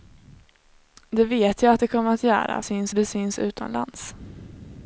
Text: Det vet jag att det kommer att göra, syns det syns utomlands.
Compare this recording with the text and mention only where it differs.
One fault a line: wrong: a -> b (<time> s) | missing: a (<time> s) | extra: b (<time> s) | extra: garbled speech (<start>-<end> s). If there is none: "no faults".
no faults